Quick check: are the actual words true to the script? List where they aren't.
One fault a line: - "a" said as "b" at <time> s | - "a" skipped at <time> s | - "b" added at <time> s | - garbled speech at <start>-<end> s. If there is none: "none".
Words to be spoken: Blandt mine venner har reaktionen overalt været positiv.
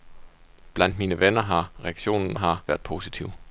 - "overalt" said as "har" at 2.3 s